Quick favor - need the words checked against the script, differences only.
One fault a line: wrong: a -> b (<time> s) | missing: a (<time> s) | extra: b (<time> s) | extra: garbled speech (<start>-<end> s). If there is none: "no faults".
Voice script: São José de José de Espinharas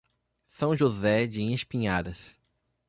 missing: José de (1.4 s)